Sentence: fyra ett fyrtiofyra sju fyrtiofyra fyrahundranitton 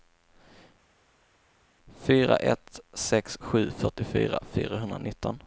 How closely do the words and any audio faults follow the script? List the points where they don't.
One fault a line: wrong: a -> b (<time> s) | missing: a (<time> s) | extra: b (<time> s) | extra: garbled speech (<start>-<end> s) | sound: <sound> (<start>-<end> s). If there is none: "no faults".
wrong: fyrtiofyra -> sex (2.9 s)